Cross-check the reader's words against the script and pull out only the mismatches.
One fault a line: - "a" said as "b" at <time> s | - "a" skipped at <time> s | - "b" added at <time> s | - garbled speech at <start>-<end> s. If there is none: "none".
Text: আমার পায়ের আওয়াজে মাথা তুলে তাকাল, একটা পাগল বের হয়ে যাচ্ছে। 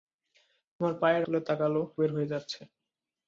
- "আওয়াজে মাথা" skipped at 1.2 s
- "একটা পাগল" skipped at 1.7 s